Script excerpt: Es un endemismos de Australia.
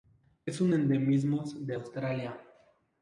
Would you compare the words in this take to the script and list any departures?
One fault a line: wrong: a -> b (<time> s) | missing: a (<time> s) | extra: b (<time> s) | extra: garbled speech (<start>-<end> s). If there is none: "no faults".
no faults